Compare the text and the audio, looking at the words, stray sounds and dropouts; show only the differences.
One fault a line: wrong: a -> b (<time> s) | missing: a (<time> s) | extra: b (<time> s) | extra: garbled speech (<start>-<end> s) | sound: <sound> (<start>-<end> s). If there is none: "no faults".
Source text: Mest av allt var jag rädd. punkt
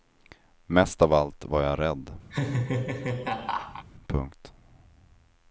sound: laugh (2.3-3.9 s)